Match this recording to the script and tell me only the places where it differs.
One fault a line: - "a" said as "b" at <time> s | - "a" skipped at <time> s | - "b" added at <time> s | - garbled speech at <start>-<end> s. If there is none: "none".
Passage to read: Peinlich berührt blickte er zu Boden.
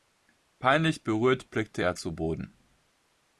none